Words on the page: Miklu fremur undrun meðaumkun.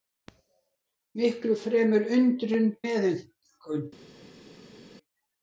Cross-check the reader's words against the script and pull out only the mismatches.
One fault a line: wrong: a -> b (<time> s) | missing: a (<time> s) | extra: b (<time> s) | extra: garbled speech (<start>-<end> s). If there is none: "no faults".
no faults